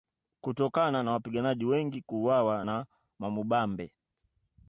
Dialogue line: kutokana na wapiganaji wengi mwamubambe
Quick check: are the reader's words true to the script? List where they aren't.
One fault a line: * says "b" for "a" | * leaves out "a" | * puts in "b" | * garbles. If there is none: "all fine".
* puts in "kuuawa na"